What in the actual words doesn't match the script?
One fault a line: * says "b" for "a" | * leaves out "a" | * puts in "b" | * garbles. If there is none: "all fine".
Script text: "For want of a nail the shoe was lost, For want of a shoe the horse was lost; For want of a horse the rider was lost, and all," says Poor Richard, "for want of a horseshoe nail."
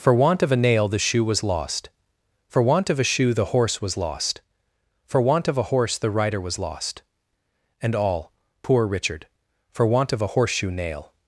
* leaves out "says"